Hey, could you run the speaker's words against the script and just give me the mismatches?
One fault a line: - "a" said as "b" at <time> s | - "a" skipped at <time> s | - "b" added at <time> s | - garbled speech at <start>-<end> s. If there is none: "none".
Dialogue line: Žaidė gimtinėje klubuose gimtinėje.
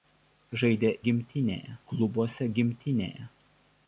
none